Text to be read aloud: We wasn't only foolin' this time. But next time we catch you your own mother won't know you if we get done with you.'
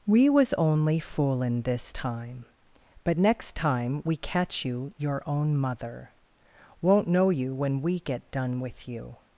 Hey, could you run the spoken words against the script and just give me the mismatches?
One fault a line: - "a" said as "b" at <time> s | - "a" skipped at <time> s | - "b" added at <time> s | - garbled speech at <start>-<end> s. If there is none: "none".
- "wasn't" said as "was" at 0.3 s
- "if" said as "when" at 7.5 s